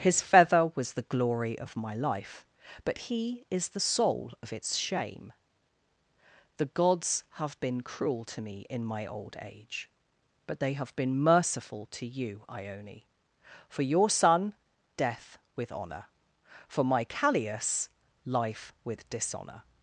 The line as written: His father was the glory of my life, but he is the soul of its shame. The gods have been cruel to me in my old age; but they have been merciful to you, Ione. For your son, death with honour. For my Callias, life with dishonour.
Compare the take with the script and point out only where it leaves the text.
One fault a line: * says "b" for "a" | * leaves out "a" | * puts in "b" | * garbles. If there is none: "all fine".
* says "feather" for "father"